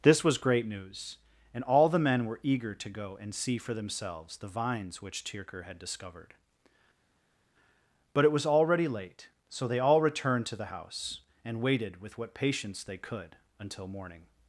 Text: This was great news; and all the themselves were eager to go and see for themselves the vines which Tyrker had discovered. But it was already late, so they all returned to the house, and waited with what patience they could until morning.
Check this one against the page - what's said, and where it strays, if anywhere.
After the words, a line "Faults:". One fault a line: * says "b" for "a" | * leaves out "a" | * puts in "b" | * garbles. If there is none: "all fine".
This was great news; and all the men were eager to go and see for themselves the vines which Tyrker had discovered. But it was already late, so they all returned to the house, and waited with what patience they could until morning.
Faults:
* says "men" for "themselves"